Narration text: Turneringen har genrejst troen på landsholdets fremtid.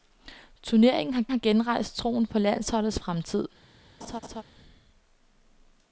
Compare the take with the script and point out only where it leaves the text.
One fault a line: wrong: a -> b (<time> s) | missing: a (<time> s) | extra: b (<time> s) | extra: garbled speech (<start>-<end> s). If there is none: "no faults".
extra: har (1.3 s)